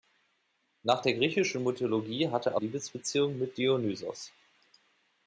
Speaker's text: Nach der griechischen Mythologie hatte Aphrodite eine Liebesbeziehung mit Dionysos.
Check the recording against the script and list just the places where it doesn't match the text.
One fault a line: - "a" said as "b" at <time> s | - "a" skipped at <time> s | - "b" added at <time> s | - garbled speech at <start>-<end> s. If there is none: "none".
- "Aphrodite eine" skipped at 2.6 s